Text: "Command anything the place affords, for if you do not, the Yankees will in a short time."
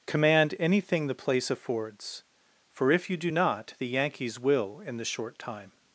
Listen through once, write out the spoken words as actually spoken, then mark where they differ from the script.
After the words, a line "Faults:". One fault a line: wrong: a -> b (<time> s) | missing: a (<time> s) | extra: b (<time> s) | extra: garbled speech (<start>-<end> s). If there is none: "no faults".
"Command anything the place affords, for if you do not, the Yankees will in the short time."
Faults:
wrong: a -> the (5.0 s)